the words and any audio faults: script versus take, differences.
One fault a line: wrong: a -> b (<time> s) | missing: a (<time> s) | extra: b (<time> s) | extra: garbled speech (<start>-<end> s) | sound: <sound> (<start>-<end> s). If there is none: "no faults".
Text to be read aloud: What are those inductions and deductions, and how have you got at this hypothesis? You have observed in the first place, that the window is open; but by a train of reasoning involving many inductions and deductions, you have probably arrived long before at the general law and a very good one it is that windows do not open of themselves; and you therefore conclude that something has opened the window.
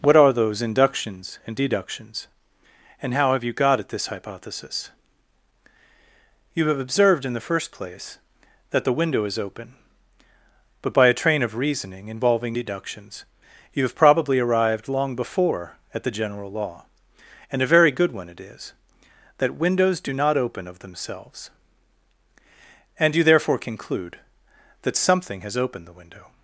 missing: many inductions and (12.6 s)